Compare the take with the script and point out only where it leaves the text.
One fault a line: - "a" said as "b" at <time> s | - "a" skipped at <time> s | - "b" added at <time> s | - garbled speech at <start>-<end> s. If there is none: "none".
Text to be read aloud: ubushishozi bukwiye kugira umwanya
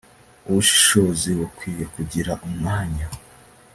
none